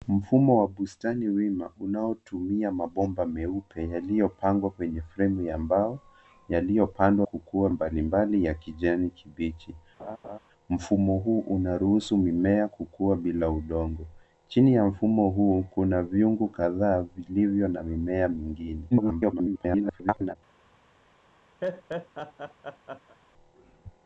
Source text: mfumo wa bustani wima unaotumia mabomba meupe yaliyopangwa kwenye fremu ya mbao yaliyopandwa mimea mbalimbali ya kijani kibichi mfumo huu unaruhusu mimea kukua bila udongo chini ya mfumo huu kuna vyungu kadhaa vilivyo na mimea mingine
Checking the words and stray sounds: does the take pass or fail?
fail